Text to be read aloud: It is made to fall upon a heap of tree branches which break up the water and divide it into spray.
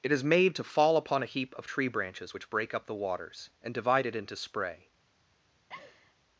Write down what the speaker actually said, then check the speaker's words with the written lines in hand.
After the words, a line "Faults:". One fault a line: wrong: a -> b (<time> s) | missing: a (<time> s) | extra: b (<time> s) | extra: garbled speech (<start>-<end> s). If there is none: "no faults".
It is made to fall upon a heap of tree branches which break up the waters and divide it into spray.
Faults:
wrong: water -> waters (2.9 s)